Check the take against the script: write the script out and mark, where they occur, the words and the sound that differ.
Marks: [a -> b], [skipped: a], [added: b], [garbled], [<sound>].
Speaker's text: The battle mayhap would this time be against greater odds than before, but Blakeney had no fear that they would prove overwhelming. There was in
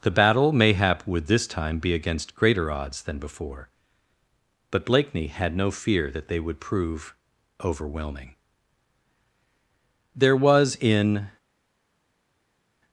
The battle mayhap would this time be against greater odds than before, but Blakeney had no fear that they would prove overwhelming. There was in